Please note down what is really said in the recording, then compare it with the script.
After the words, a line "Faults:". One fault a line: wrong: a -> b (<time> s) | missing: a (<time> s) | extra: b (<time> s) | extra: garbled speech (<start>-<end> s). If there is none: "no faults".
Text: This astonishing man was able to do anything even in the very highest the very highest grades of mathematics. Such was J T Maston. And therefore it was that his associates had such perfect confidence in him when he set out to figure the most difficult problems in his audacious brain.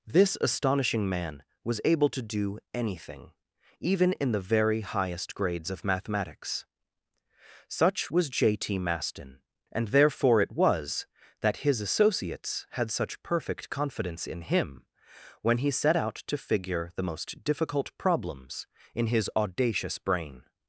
This astonishing man was able to do anything even in the very highest grades of mathematics. Such was J T Maston. And therefore it was that his associates had such perfect confidence in him when he set out to figure the most difficult problems in his audacious brain.
Faults:
missing: the very highest (5.3 s)